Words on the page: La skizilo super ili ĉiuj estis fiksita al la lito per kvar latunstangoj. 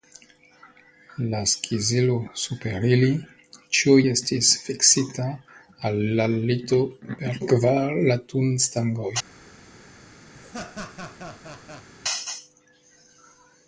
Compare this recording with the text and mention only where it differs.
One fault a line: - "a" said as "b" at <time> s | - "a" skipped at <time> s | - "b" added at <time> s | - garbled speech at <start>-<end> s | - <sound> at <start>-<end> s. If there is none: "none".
- laugh at 10.3-11.9 s